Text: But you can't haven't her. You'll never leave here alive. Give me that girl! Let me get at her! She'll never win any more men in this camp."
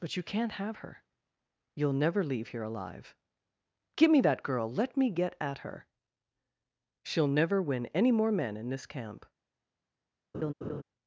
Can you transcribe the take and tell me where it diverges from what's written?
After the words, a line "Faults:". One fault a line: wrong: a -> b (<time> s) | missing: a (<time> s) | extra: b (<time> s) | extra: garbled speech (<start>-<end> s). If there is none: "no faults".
But you can't have her. You'll never leave here alive. Give me that girl! Let me get at her! She'll never win any more men in this camp."
Faults:
wrong: haven't -> have (0.5 s)